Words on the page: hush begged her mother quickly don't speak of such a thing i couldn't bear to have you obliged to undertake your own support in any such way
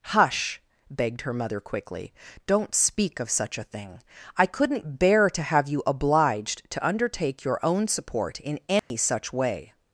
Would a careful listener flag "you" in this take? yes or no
no